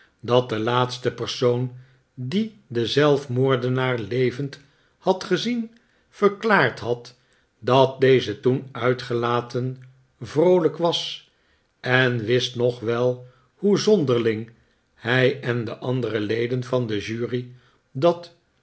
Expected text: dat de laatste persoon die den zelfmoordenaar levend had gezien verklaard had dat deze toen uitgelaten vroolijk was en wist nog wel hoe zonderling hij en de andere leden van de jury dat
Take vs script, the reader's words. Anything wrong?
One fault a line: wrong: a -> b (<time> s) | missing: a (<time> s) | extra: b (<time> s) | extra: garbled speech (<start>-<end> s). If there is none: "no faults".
no faults